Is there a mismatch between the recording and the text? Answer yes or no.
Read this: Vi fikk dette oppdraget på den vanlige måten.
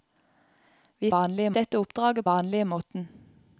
yes